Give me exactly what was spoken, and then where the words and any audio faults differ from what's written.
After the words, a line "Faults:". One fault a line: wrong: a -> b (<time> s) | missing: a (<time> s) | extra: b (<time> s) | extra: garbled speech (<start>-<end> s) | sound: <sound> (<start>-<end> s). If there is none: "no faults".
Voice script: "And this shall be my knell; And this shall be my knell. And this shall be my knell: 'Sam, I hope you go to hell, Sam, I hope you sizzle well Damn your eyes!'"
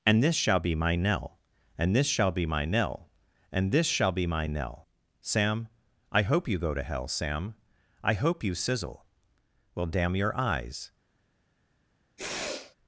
"And this shall be my knell; And this shall be my knell. And this shall be my knell: 'Sam, I hope you go to hell, Sam, I hope you sizzle well Damn your eyes!'"
Faults:
sound: sniff (12.2-12.8 s)